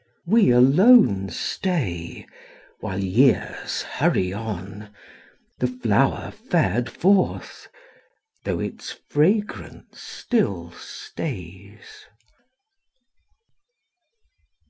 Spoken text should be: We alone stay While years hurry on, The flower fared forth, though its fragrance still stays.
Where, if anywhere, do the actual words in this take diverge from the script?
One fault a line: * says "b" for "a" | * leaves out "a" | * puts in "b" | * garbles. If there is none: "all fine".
all fine